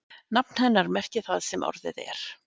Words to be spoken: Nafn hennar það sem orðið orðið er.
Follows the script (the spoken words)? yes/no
no